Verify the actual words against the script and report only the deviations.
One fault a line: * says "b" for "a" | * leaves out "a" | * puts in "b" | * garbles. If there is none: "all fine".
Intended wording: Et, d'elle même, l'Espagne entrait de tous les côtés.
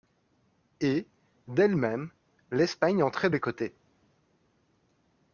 * leaves out "de tous"